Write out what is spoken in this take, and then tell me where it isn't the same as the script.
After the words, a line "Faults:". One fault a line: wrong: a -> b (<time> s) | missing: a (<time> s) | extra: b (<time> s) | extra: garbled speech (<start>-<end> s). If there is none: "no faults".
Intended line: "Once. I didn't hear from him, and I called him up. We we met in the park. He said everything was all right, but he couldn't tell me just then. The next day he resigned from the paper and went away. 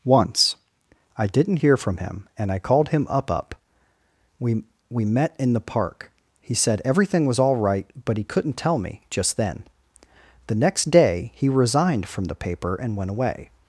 "Once. I didn't hear from him, and I called him up up. We we met in the park. He said everything was all right, but he couldn't tell me just then. The next day he resigned from the paper and went away.
Faults:
extra: up (3.3 s)